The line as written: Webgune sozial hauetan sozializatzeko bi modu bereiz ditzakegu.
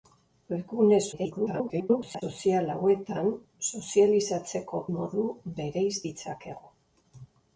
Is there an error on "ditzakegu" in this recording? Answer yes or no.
no